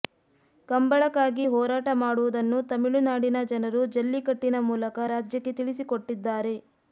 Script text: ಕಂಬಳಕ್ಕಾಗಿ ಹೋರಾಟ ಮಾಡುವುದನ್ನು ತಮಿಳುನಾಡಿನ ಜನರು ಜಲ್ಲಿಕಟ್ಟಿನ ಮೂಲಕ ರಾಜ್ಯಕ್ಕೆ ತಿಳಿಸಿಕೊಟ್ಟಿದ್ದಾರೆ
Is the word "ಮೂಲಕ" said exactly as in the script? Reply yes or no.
yes